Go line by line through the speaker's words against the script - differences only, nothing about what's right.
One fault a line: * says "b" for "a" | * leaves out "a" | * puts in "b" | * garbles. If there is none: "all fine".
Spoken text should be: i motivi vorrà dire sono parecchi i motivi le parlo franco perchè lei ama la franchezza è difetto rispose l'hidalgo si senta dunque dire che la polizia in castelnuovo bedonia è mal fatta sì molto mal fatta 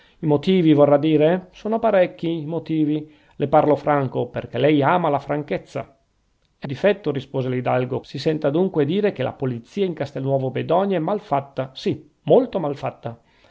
all fine